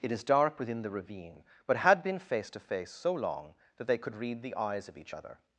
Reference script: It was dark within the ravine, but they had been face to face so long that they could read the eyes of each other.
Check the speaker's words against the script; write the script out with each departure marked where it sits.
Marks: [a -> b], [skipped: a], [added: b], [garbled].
It [was -> is] dark within the ravine, but [skipped: they] had been face to face so long that they could read the eyes of each other.